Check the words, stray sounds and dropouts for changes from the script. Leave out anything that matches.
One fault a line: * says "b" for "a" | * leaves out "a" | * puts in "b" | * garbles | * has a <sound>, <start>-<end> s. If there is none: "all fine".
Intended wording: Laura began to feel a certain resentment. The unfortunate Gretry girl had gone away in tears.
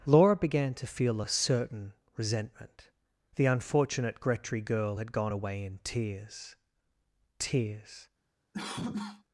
* puts in "tears"
* has a cough, 8.5-9.2 s